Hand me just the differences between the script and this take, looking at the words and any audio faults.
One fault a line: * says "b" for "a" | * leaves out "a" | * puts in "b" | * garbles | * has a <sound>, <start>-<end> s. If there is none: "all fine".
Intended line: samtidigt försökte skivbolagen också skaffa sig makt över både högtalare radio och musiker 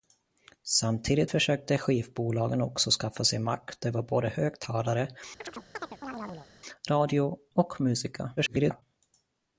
* has a chirp, 5.4-6.5 s
* garbles